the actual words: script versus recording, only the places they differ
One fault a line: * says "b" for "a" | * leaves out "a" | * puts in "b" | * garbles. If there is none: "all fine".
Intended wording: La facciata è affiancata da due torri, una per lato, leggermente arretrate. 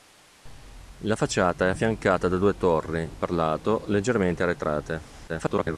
* leaves out "una"
* garbles